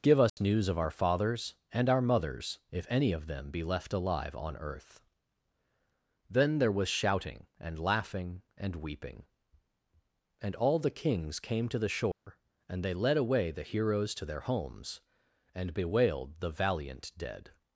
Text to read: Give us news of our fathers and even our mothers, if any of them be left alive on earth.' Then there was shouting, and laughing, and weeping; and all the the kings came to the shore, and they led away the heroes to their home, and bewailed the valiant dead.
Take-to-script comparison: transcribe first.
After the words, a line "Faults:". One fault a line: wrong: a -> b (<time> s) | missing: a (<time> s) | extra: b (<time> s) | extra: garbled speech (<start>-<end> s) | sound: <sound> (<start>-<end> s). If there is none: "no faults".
Give us news of our fathers and our mothers, if any of them be left alive on earth.' Then there was shouting, and laughing, and weeping; and all the kings came to the shore, and they led away the heroes to their homes, and bewailed the valiant dead.
Faults:
sound: dropout (0.3-0.4 s)
missing: even (1.9 s)
missing: the (10.9 s)
sound: dropout (12.1-12.3 s)
wrong: home -> homes (14.4 s)